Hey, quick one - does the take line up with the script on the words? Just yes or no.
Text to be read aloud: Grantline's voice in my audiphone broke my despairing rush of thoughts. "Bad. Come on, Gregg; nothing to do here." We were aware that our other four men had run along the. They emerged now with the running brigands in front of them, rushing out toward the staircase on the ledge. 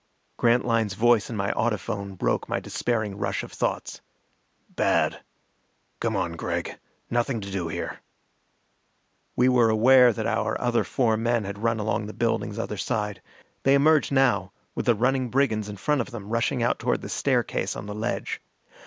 no